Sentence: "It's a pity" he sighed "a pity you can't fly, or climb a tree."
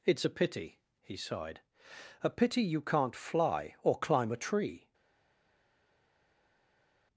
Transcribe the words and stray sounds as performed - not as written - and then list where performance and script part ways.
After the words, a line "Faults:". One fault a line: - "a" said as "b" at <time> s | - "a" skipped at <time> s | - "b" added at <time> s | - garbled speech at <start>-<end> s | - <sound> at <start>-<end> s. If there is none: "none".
"It's a pity" he sighed "a pity you can't fly, or climb a tree."
Faults:
none